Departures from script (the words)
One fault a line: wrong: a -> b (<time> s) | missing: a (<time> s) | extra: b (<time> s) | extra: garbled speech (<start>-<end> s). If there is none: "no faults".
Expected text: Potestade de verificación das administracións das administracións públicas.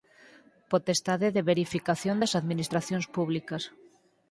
missing: das administracións (3.1 s)